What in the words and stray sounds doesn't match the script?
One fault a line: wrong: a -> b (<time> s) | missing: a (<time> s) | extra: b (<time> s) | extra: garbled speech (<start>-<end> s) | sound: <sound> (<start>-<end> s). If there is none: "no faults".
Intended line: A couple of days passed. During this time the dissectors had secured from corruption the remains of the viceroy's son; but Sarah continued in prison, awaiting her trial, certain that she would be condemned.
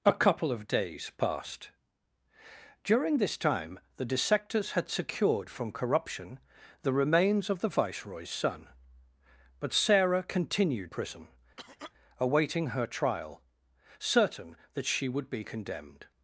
missing: in (10.9 s)
sound: cough (11.6-11.9 s)